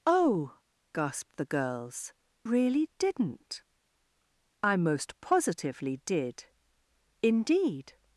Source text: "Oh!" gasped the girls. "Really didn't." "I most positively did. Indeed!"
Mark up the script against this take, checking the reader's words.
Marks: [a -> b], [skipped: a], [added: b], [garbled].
"Oh!" gasped the girls. "Really didn't." "I most positively did. Indeed!"